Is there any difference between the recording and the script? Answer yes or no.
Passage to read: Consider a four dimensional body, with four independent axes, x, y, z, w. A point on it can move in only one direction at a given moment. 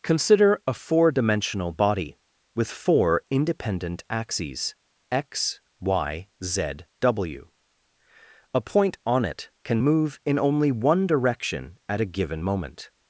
no